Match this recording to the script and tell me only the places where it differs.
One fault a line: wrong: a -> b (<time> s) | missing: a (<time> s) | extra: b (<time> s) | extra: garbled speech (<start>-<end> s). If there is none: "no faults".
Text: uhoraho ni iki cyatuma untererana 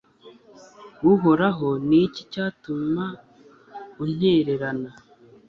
no faults